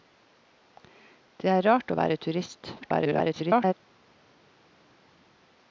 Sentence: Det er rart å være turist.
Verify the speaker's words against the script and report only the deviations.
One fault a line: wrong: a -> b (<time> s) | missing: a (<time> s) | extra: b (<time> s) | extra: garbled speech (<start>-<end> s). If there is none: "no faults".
extra: garbled speech (2.8-3.7 s)